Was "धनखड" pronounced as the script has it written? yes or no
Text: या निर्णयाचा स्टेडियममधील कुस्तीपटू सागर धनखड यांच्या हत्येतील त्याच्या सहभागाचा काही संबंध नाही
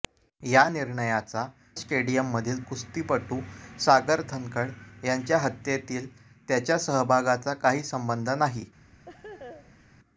yes